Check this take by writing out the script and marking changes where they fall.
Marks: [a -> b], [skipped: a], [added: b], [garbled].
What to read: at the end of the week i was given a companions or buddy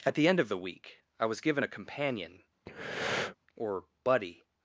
at the end of the week i was given a [companions -> companion] or buddy